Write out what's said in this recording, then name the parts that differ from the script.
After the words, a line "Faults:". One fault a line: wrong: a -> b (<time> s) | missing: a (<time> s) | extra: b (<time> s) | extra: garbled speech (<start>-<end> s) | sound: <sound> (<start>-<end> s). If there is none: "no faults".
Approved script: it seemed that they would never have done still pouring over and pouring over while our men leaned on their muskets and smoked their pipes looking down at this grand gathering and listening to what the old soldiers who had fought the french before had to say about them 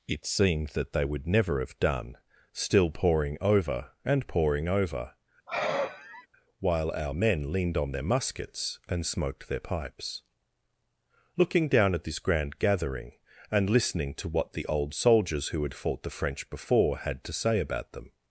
it seemed that they would never have done still pouring over and pouring over while our men leaned on their muskets and smoked their pipes looking down at this grand gathering and listening to what the old soldiers who had fought the french before had to say about them
Faults:
sound: sigh (5.5-6.3 s)